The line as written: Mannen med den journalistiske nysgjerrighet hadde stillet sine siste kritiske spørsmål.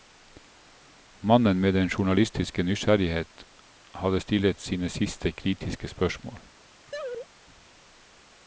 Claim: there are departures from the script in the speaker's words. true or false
false